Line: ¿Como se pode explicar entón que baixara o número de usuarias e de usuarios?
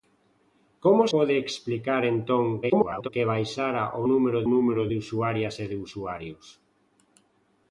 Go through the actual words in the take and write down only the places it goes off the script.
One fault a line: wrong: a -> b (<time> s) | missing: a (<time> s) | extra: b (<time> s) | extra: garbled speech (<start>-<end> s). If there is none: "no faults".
missing: se (1.0 s)
extra: garbled speech (2.6-3.1 s)
extra: número (4.5 s)